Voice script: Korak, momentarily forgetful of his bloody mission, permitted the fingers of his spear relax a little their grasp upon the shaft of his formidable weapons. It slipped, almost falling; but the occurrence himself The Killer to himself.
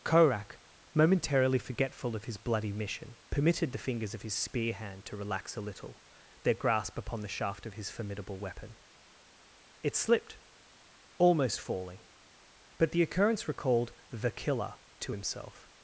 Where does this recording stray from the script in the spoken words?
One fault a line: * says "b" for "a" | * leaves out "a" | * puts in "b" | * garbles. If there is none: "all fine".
* puts in "hand to"
* says "weapon" for "weapons"
* says "recalled" for "himself"